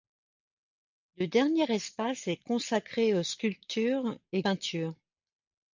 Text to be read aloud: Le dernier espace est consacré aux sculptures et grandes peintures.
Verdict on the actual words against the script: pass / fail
fail